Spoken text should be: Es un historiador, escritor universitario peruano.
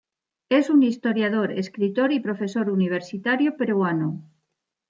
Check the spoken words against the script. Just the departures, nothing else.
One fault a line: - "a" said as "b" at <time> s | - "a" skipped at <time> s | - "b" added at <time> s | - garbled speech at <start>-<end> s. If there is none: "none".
- "y profesor" added at 2.1 s